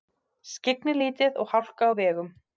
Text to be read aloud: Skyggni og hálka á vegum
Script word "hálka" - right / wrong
right